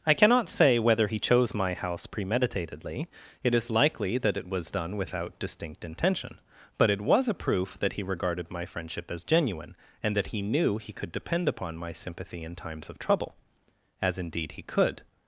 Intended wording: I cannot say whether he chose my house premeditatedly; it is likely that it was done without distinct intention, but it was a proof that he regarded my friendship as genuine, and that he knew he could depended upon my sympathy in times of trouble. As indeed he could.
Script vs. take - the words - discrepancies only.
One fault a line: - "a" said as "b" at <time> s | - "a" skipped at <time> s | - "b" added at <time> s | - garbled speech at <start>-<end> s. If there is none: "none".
- "depended" said as "depend" at 11.1 s